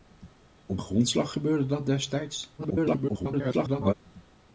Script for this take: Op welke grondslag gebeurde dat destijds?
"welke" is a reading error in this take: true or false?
true